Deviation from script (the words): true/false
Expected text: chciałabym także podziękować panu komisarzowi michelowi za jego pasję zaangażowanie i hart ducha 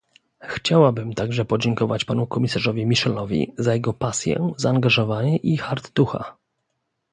false